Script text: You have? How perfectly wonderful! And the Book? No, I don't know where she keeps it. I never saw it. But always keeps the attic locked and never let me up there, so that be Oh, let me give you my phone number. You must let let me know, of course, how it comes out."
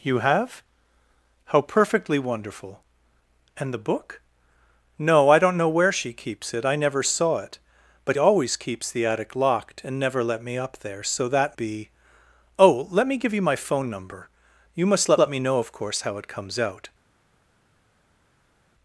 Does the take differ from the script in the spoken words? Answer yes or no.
no